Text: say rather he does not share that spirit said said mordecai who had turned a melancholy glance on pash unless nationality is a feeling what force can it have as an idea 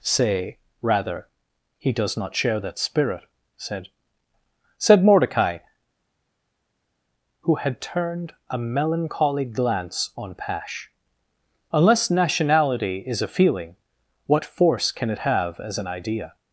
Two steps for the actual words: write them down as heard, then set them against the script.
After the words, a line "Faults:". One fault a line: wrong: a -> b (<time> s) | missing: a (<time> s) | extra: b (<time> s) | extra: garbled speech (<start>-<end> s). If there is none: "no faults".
say rather he does not share that spirit said said mordecai who had turned a melancholy glance on pash unless nationality is a feeling what force can it have as an idea
Faults:
no faults